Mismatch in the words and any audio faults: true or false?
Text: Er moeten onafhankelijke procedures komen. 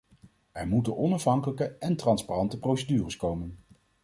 true